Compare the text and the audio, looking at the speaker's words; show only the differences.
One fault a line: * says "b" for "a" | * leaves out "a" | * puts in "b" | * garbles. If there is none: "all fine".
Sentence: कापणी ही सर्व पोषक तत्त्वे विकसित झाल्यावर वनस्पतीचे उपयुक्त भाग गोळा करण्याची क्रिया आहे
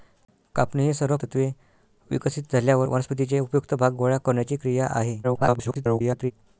* leaves out "पोषक"
* garbles